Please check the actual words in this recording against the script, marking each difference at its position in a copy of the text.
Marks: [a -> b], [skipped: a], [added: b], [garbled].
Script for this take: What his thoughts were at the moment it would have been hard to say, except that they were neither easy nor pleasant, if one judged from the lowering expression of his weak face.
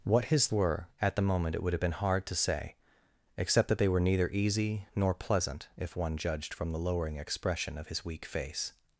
What his [skipped: thoughts] were at the moment it would have been hard to say, except that they were neither easy nor pleasant, if one judged from the lowering expression of his weak face.